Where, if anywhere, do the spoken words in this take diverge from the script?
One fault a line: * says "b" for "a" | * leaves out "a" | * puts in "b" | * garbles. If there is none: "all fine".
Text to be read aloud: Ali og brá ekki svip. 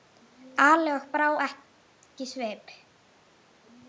all fine